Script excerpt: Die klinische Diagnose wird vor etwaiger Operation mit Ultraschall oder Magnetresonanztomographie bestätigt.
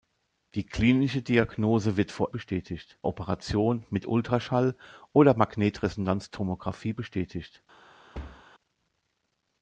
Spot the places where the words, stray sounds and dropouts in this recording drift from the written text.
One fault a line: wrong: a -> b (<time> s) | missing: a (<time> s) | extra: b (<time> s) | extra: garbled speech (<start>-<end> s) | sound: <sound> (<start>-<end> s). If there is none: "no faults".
wrong: etwaiger -> bestätigt (2.3 s)
sound: thud (8.1-8.4 s)